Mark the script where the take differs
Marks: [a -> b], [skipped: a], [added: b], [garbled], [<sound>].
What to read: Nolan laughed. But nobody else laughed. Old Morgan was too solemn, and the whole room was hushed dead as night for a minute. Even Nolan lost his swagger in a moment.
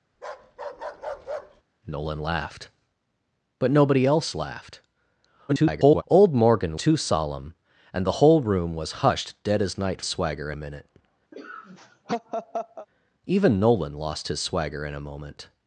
[bark] Nolan laughed. But nobody else laughed. [garbled] Old Morgan [skipped: was] too solemn, and the whole room was hushed dead as night [for -> swagger] a minute. [laugh] Even Nolan lost his swagger in a moment.